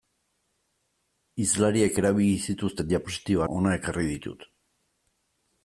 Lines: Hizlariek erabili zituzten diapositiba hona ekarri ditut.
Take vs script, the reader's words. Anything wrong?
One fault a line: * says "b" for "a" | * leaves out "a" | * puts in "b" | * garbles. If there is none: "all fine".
all fine